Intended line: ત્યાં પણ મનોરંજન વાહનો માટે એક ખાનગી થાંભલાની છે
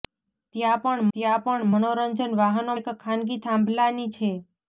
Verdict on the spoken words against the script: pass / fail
fail